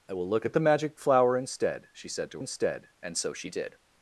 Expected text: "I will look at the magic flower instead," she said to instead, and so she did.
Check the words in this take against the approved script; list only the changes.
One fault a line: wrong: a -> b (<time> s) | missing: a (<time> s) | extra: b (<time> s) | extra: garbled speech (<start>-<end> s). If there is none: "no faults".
no faults